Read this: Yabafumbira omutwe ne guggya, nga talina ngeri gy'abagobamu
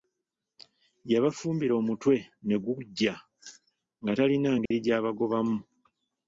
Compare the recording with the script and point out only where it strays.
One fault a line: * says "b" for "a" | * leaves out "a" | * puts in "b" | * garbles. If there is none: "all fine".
all fine